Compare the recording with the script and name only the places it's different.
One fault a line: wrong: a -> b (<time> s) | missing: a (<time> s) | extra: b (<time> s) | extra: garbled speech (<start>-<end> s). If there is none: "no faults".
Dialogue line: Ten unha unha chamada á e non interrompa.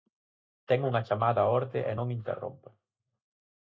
missing: unha (1.1 s)
extra: orde (1.6 s)